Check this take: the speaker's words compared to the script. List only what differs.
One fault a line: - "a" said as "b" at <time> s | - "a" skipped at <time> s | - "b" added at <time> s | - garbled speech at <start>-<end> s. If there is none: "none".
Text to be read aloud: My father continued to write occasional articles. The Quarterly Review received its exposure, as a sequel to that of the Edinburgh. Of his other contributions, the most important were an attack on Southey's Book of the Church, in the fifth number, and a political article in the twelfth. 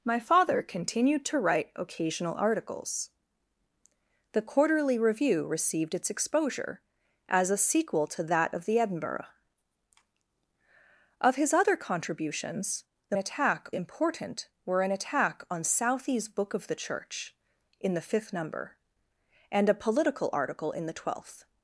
- "most" said as "attack" at 13.2 s